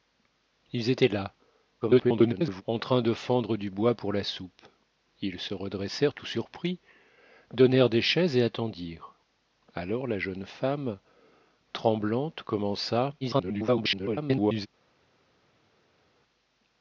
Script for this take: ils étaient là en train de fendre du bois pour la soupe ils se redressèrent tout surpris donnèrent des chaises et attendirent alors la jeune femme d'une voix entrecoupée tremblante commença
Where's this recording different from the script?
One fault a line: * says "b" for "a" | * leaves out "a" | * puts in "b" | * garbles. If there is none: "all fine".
* garbles
* leaves out "d'une voix entrecoupée"
* garbles